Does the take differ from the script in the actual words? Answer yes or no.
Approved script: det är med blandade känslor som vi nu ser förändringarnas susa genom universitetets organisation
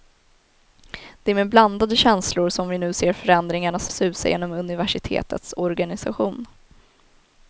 no